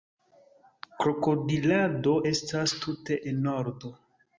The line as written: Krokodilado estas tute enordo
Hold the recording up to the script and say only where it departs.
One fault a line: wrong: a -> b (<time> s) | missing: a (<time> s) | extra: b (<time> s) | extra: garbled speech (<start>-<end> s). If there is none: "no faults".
no faults